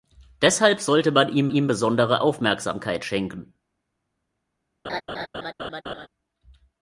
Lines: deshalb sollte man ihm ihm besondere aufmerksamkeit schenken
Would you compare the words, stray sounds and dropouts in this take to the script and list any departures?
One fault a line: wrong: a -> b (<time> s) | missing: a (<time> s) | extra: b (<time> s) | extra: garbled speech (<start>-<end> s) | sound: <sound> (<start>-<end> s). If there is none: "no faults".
sound: laugh (4.8-6.1 s)